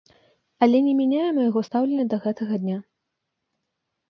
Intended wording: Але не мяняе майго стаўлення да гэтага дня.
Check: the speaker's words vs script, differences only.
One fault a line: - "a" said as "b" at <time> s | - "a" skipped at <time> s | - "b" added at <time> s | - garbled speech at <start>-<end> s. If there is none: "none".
none